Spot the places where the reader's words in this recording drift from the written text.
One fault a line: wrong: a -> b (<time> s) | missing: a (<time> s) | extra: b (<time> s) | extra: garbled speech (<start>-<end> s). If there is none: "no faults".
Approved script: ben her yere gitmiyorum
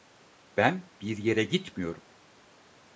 wrong: her -> bir (1.0 s)